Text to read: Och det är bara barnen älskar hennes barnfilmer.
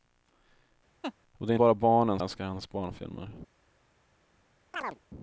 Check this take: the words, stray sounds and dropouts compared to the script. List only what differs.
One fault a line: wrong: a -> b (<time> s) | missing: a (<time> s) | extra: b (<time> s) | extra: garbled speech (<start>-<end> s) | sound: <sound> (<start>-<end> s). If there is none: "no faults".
sound: laugh (1.0-1.1 s)
sound: chirp (4.7-5.0 s)